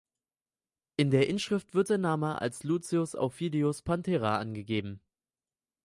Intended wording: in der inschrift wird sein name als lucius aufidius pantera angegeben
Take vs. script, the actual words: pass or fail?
pass